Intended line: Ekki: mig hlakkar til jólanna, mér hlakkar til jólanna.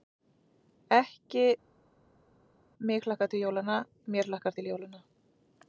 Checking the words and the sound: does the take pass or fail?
pass